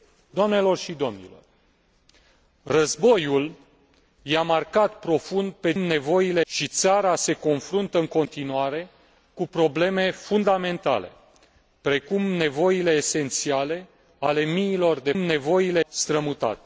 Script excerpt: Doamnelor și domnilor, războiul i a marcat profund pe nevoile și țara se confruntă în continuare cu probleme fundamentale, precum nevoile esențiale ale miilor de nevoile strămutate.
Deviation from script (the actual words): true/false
false